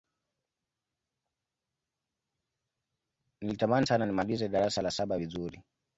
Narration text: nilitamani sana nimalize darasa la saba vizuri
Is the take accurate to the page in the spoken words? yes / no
yes